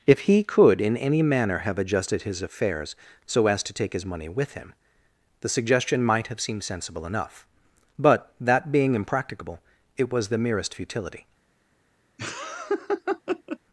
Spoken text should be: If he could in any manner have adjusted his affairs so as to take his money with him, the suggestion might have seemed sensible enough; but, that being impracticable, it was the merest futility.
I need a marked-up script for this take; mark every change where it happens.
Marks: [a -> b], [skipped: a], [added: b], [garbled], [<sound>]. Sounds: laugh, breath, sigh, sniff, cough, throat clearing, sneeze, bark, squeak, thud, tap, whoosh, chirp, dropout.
If he could in any manner have adjusted his affairs so as to take his money with him, the suggestion might have seemed sensible enough; but, that being impracticable, it was the merest futility. [laugh]